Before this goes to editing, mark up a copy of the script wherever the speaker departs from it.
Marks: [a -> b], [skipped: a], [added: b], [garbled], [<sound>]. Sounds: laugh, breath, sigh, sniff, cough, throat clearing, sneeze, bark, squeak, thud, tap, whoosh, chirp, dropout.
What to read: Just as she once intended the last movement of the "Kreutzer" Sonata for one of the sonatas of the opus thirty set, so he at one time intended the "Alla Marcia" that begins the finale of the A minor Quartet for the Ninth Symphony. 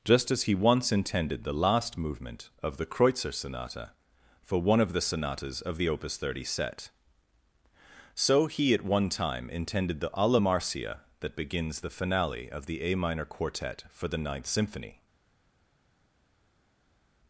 Just as [she -> he] once intended the last movement of the "Kreutzer" Sonata for one of the sonatas of the opus thirty set, so he at one time intended the "Alla Marcia" that begins the finale of the A minor Quartet for the Ninth Symphony.